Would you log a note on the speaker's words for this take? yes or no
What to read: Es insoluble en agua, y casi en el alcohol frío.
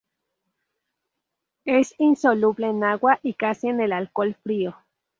no